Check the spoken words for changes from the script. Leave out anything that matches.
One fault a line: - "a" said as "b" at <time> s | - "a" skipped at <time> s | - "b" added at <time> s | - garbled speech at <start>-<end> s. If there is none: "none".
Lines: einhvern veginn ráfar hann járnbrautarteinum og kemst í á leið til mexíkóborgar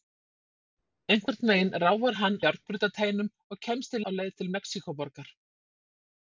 none